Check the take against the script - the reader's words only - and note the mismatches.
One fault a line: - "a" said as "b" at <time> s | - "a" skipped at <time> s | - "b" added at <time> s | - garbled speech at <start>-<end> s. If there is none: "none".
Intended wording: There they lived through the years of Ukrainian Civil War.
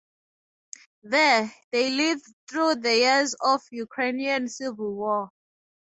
none